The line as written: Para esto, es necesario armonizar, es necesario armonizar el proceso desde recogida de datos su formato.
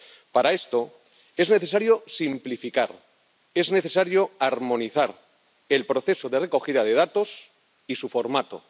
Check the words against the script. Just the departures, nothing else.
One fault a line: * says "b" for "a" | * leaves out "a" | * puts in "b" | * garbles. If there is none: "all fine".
* says "simplificar" for "armonizar"
* says "de" for "desde"
* puts in "y"